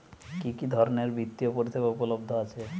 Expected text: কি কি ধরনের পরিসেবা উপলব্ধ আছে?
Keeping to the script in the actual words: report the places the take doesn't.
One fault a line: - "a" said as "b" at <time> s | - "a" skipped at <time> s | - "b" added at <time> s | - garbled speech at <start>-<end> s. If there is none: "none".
- "বৃত্তিয়" added at 1.1 s